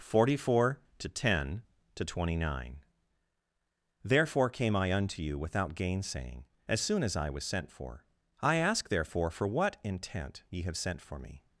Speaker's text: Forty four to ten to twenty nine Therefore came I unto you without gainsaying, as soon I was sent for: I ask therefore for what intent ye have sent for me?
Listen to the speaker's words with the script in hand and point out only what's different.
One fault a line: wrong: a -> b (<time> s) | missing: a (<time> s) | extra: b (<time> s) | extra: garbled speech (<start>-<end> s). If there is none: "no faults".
extra: as (7.0 s)